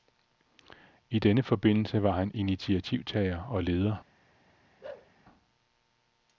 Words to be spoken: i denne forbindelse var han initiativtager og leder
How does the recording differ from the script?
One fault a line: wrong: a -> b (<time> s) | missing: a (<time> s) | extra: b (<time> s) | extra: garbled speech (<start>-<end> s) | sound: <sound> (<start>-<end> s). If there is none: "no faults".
sound: bark (4.8-5.1 s)